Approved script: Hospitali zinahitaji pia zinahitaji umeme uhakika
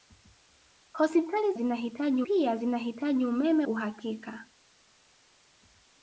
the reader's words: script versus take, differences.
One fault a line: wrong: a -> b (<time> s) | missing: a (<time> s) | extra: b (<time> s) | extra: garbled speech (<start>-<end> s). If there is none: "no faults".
no faults